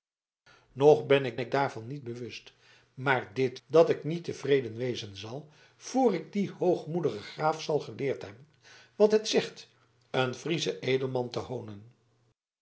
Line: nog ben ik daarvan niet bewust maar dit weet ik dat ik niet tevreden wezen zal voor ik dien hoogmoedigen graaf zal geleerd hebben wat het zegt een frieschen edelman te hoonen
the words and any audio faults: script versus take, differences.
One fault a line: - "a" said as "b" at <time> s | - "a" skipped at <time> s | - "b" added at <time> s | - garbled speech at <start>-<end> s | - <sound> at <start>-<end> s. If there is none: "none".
- "ik" added at 1.4 s
- "weet ik" skipped at 3.6 s